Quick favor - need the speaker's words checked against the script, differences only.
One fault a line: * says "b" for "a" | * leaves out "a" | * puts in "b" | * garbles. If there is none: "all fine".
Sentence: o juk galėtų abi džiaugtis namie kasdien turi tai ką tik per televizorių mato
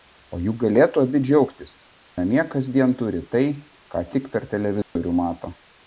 all fine